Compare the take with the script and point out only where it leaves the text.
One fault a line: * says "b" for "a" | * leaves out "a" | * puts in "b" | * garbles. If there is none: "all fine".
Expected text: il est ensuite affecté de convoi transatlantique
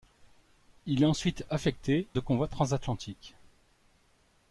all fine